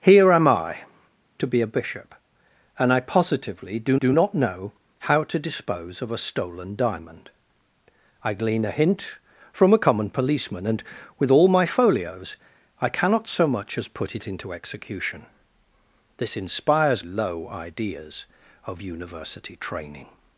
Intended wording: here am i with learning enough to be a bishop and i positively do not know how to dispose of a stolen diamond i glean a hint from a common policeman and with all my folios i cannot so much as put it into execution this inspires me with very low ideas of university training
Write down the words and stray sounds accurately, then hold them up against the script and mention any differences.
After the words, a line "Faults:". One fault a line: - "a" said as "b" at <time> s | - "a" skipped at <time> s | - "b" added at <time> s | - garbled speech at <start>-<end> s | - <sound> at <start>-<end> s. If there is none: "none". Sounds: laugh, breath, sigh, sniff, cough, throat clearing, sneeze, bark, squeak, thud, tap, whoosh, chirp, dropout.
here am i to be a bishop and i positively do do not know how to dispose of a stolen diamond i glean a hint from a common policeman and with all my folios i cannot so much as put it into execution this inspires low ideas of university training
Faults:
- "with learning enough" skipped at 0.8 s
- "do" added at 3.9 s
- "me with very" skipped at 17.1 s